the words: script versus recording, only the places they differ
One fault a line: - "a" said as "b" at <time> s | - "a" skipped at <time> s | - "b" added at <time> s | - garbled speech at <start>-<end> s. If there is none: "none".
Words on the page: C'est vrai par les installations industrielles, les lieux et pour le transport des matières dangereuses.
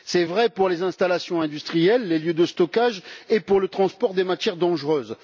- "par" said as "pour" at 0.5 s
- "de stockage" added at 2.3 s